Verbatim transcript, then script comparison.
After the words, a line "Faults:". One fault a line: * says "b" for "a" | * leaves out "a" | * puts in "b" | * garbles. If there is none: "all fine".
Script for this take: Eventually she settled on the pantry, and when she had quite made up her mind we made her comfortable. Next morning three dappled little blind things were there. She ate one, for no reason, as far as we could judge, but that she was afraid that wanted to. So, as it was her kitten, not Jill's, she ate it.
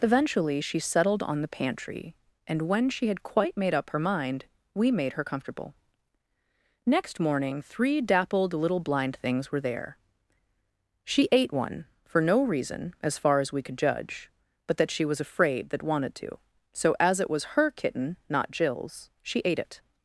Eventually she settled on the pantry, and when she had quite made up her mind we made her comfortable. Next morning three dappled little blind things were there. She ate one, for no reason, as far as we could judge, but that she was afraid that wanted to. So, as it was her kitten, not Jill's, she ate it.
Faults:
all fine